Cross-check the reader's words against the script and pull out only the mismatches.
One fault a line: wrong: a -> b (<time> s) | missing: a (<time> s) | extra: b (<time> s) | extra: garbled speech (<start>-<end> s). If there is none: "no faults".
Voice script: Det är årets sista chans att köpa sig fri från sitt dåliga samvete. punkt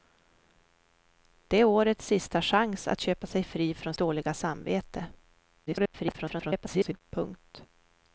missing: sitt (3.9 s)
extra: garbled speech (5.7-7.0 s)